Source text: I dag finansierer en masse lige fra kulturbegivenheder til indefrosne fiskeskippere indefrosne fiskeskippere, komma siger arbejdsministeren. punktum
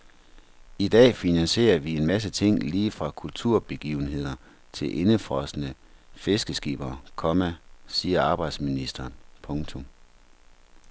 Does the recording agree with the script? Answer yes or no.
no